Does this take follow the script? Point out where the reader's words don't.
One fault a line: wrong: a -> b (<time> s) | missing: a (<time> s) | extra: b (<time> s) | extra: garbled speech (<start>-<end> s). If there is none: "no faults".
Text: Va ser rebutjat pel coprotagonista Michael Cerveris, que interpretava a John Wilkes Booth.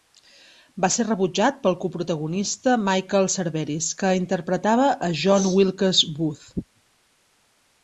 no faults